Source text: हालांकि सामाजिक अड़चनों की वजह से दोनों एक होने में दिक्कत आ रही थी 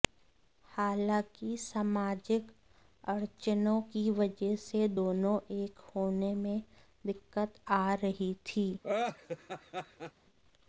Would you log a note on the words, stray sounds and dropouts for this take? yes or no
yes